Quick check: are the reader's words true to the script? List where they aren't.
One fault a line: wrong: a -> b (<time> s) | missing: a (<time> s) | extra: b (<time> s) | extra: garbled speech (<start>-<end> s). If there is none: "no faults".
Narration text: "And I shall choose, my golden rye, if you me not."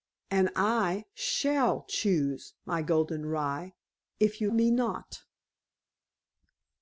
no faults